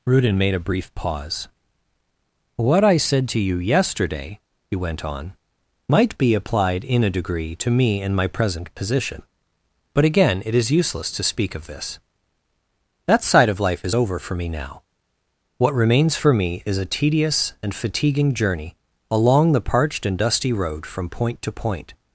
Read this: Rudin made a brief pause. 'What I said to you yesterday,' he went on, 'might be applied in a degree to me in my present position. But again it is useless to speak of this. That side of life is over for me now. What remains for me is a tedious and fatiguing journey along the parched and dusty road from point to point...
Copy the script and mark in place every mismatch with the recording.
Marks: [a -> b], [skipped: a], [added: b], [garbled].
Rudin made a brief pause. 'What I said to you yesterday,' he went on, 'might be applied in a degree to me in my present position. But again it is useless to speak of this. That side of life is over for me now. What remains for me is a tedious and fatiguing journey along the parched and dusty road from point to point...